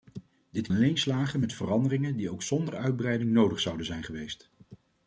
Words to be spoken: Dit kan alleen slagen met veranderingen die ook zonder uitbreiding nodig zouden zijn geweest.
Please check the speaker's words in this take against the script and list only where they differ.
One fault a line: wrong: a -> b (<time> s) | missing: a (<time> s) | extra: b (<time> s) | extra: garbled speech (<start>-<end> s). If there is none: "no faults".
missing: kan (0.7 s)